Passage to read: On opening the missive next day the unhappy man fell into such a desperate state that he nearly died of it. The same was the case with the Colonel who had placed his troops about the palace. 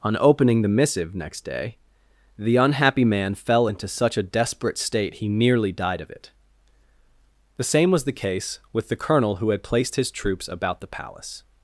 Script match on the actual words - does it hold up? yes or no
no